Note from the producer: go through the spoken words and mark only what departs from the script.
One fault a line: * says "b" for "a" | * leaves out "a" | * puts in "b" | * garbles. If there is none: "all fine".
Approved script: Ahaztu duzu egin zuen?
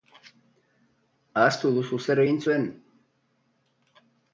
* puts in "zer"